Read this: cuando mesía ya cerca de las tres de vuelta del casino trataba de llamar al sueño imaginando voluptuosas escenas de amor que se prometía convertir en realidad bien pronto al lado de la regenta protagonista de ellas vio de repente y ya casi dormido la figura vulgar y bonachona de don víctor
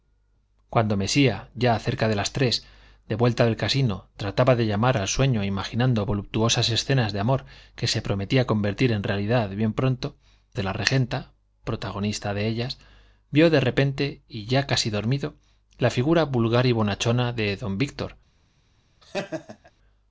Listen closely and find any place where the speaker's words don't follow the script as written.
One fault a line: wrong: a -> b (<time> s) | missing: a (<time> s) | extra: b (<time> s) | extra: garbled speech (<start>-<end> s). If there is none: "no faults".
missing: al lado (10.2 s)